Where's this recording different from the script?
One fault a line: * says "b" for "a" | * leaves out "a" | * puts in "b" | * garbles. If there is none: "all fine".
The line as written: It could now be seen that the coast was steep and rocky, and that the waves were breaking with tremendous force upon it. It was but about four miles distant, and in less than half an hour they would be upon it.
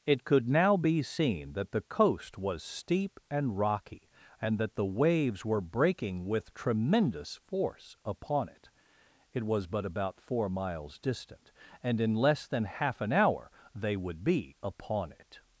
all fine